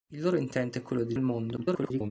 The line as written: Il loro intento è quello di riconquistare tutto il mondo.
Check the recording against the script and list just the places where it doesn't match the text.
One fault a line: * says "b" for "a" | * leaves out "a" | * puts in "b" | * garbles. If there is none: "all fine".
* leaves out "riconquistare tutto"
* garbles